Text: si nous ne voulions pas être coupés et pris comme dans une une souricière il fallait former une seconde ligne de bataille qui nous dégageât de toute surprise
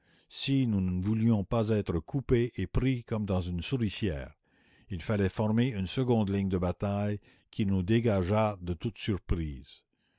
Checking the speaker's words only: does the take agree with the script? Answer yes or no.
no